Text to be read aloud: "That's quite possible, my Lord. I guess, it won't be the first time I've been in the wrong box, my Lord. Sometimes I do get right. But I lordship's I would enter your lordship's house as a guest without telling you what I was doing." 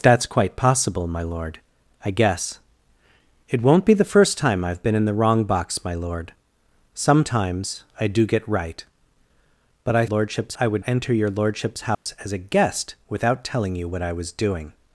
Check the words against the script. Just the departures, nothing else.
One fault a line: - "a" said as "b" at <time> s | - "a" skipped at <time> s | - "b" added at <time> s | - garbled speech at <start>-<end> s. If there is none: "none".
none